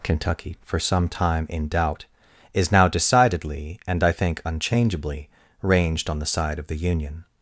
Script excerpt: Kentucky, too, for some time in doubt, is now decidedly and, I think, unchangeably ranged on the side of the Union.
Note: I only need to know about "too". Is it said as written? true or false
false